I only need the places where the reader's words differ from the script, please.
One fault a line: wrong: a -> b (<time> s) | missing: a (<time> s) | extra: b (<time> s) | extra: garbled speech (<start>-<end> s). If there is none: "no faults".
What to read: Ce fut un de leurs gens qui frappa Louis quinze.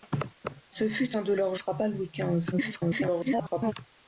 missing: gens qui (1.6 s)
extra: garbled speech (2.5-3.7 s)